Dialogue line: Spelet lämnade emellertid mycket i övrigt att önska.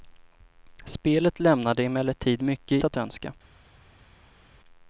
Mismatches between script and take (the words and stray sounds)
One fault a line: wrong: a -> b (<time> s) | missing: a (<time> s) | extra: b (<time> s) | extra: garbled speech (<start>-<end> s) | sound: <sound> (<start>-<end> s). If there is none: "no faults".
missing: i övrigt (2.8 s)